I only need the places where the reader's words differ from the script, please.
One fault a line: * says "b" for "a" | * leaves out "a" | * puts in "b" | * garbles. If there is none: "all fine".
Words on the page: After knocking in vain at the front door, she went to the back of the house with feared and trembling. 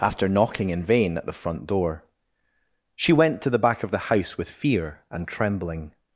* says "fear" for "feared"